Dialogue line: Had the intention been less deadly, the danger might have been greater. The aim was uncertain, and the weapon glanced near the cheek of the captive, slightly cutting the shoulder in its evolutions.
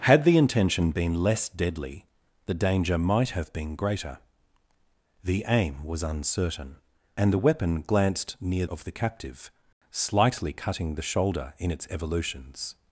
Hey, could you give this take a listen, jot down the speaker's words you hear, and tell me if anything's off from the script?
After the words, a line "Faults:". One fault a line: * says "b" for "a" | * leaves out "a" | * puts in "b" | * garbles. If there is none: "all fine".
Had the intention been less deadly, the danger might have been greater. The aim was uncertain, and the weapon glanced near of the captive, slightly cutting the shoulder in its evolutions.
Faults:
* leaves out "the cheek"